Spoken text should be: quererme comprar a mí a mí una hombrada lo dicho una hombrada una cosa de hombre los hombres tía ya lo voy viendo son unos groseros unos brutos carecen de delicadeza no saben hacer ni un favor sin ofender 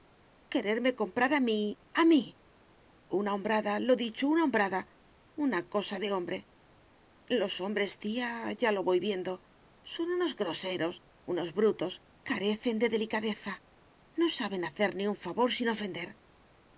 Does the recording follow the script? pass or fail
pass